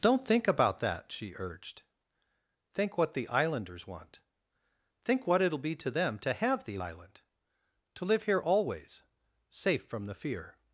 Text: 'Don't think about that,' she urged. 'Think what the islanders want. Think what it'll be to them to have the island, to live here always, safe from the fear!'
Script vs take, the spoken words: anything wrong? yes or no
no